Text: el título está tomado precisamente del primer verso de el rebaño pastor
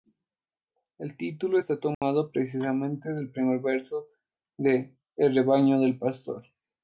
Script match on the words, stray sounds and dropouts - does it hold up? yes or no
no